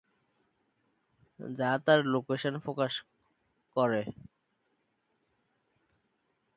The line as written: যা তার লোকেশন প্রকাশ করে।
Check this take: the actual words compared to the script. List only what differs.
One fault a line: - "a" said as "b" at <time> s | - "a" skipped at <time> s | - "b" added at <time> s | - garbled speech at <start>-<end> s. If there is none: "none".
none